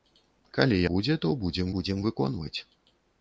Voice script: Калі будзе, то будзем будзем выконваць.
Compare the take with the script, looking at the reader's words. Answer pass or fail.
pass